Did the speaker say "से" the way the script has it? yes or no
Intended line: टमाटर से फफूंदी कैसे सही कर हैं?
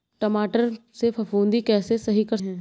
yes